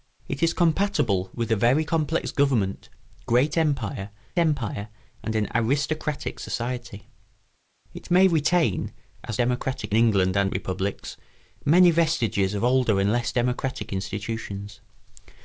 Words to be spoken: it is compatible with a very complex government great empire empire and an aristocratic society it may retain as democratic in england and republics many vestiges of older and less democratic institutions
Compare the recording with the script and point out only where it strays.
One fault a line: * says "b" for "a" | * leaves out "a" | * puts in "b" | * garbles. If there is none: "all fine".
all fine